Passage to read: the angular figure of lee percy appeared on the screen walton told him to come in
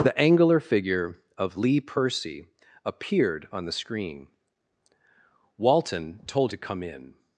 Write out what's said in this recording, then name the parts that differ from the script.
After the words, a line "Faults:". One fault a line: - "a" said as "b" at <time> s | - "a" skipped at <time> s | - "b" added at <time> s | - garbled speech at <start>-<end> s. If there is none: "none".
the angular figure of lee percy appeared on the screen walton told to come in
Faults:
- "him" skipped at 6.5 s